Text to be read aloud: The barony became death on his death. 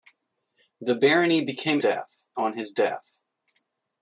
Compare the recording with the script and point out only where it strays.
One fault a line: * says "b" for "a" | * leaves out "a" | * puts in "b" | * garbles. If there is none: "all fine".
all fine